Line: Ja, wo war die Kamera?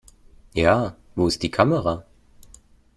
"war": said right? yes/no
no